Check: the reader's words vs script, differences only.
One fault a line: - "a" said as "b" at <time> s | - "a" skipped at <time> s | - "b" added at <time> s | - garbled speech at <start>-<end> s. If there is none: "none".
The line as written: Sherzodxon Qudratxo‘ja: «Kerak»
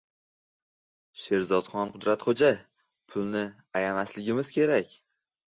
- "Pulni ayamasligimiz" added at 3.2 s